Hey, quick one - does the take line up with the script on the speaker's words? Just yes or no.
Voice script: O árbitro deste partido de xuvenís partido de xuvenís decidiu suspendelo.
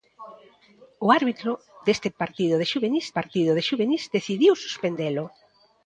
yes